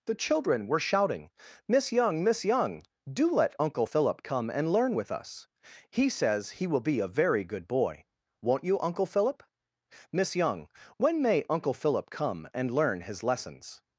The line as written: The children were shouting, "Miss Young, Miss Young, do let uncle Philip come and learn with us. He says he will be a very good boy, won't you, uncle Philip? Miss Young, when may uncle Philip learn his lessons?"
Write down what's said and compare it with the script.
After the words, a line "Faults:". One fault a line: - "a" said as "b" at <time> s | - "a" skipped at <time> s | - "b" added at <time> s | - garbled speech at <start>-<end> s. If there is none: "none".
The children were shouting, "Miss Young, Miss Young, do let uncle Philip come and learn with us. He says he will be a very good boy, won't you, uncle Philip? Miss Young, when may uncle Philip come and learn his lessons?"
Faults:
- "come and" added at 12.1 s